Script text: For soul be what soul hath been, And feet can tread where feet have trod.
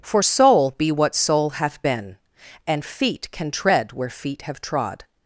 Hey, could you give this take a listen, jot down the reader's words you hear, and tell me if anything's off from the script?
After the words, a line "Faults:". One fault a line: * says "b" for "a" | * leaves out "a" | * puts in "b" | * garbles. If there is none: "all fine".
For soul be what soul hath been, And feet can tread where feet have trod.
Faults:
all fine